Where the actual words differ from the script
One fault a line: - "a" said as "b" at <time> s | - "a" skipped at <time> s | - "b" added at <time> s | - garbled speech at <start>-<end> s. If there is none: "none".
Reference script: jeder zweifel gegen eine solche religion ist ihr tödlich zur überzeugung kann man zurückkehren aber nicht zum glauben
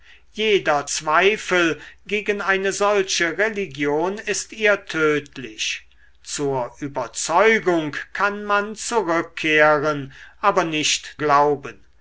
- "zum" skipped at 11.2 s